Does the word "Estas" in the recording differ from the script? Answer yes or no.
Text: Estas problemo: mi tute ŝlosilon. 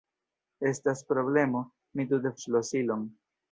no